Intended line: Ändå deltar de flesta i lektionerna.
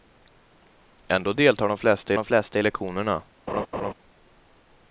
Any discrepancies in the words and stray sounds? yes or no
yes